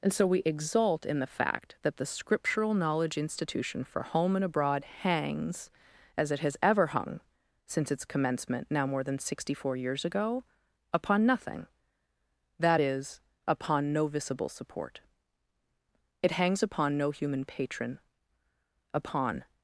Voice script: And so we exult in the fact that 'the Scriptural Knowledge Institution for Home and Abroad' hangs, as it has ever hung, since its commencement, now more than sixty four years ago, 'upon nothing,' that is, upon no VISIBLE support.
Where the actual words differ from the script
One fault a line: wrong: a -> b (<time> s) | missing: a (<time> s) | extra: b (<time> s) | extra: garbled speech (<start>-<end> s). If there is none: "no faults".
extra: It hangs upon no human patron upon (16.2 s)